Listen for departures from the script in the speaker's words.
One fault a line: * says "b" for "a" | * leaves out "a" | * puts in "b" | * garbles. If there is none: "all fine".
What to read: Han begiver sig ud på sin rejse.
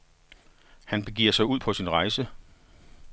all fine